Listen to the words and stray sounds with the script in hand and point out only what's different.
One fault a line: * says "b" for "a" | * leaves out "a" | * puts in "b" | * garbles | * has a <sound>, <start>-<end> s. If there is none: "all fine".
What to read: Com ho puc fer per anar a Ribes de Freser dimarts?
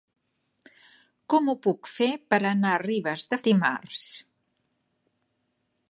* leaves out "Freser"